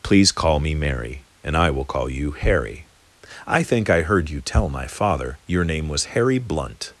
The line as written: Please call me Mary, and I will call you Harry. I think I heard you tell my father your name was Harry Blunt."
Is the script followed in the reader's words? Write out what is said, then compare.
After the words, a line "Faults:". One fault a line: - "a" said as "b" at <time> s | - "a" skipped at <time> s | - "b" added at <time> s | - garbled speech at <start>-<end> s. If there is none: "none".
Please call me Mary, and I will call you Harry. I think I heard you tell my father your name was Harry Blunt."
Faults:
none